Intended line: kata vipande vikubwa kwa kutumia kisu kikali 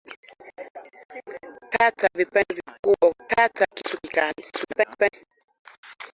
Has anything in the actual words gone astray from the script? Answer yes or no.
yes